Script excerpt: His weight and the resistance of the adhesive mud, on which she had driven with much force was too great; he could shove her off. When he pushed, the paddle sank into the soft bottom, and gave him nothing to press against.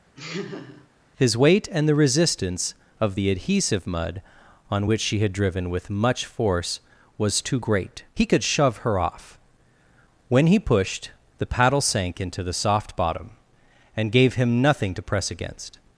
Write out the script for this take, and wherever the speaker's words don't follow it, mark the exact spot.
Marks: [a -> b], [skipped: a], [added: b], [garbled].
His weight and the resistance of the adhesive mud, on which she had driven with much force was too great; he could shove her off. When he pushed, the paddle sank into the soft bottom, and gave him nothing to press against.